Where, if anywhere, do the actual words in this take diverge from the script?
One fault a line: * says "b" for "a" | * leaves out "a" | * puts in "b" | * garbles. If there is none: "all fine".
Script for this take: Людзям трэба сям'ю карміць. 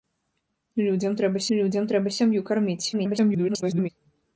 * puts in "людзям трэба"
* garbles